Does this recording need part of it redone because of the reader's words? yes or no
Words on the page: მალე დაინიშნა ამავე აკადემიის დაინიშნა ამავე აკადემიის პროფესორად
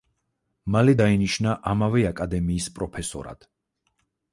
yes